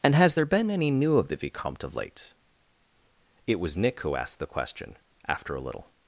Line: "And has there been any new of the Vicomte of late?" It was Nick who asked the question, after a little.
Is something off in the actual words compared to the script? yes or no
no